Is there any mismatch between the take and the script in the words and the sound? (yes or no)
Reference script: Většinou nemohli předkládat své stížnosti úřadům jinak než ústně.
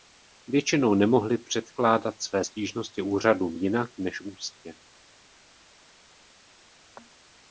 no